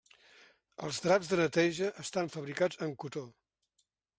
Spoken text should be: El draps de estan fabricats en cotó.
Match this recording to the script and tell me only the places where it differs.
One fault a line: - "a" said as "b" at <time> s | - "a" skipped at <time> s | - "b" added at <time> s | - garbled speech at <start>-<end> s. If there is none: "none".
- "El" said as "Els" at 0.9 s
- "neteja" added at 1.4 s